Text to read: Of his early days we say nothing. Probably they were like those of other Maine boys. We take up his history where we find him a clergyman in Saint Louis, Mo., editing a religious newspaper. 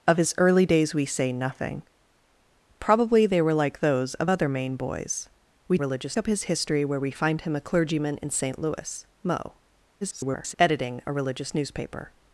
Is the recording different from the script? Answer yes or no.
yes